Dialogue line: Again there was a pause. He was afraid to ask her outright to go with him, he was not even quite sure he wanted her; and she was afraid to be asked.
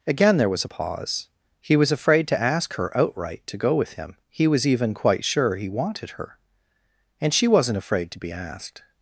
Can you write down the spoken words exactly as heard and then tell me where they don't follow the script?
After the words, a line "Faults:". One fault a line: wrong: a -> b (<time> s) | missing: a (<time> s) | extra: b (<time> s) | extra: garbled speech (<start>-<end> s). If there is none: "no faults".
Again there was a pause. He was afraid to ask her outright to go with him, he was even quite sure he wanted her; and she wasn't afraid to be asked.
Faults:
missing: not (4.6 s)
wrong: was -> wasn't (7.5 s)